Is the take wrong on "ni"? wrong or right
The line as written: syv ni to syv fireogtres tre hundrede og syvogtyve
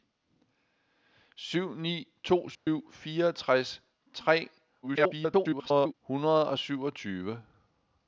right